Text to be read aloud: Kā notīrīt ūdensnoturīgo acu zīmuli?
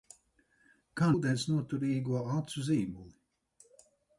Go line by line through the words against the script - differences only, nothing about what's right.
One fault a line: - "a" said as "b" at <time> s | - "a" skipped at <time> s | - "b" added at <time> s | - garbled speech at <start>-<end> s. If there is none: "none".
- "notīrīt" skipped at 1.1 s